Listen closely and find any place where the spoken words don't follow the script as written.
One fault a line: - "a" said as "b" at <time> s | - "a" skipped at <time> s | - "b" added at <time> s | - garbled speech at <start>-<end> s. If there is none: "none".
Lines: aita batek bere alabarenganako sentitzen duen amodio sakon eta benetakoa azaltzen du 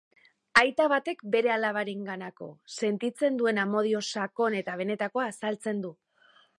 none